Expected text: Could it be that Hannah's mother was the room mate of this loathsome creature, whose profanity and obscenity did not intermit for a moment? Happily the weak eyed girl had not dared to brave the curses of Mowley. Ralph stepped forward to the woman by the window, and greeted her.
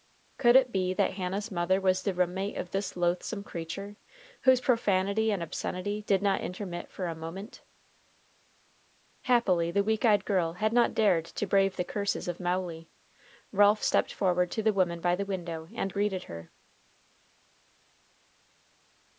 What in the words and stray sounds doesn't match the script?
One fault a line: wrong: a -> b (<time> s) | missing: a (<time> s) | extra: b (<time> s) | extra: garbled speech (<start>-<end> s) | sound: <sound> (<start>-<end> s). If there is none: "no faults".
no faults